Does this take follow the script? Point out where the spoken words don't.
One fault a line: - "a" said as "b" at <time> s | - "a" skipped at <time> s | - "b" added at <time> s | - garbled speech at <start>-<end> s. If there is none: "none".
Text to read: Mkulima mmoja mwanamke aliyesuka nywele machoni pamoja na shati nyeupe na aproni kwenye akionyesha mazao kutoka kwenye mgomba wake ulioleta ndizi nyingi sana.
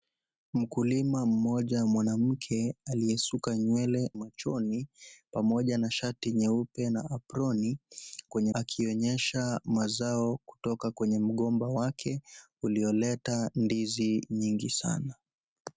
none